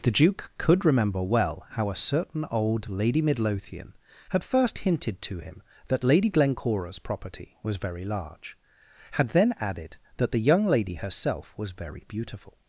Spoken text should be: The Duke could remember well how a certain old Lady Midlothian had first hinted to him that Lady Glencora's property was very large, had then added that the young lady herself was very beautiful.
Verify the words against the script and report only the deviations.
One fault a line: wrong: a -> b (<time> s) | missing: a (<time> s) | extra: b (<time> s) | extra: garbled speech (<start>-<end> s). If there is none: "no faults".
no faults